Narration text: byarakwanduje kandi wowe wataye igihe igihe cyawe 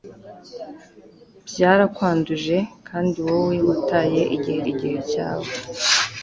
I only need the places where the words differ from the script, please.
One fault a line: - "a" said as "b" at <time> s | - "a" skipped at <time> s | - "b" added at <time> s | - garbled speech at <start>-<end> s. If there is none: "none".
none